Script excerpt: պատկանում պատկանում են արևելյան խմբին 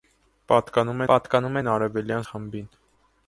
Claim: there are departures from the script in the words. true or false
false